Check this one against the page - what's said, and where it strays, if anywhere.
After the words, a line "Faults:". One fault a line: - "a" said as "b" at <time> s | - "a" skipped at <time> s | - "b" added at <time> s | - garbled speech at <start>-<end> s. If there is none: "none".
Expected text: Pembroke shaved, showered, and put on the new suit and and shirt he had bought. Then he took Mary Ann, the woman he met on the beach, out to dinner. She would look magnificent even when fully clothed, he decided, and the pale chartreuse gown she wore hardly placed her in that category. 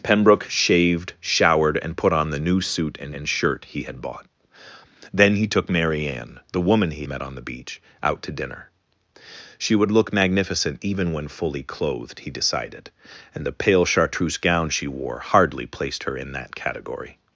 Pembroke shaved, showered, and put on the new suit and and shirt he had bought. Then he took Mary Ann, the woman he met on the beach, out to dinner. She would look magnificent even when fully clothed, he decided, and the pale chartreuse gown she wore hardly placed her in that category.
Faults:
none